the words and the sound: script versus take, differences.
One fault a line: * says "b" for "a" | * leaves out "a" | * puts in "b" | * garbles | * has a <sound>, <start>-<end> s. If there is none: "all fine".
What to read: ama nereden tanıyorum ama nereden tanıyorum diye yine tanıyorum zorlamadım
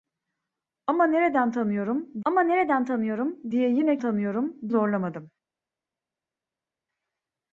all fine